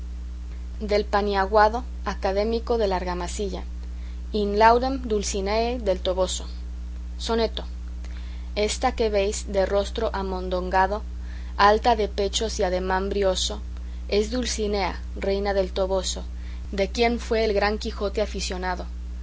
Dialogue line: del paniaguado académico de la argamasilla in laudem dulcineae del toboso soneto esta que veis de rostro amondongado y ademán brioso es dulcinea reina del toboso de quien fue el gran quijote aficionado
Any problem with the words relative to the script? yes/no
yes